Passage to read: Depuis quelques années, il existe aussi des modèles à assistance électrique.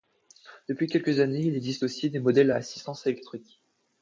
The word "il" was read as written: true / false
true